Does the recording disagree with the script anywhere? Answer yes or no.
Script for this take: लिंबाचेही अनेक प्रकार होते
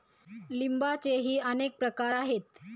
yes